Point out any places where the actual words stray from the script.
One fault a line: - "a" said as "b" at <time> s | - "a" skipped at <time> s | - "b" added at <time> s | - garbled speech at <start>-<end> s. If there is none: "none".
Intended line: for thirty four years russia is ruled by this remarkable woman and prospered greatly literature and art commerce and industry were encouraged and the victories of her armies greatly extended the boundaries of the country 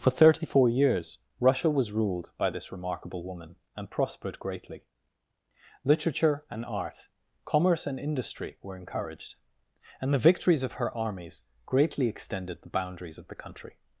- "is" said as "was" at 1.7 s